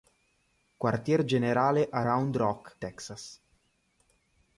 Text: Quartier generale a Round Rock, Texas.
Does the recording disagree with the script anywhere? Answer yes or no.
no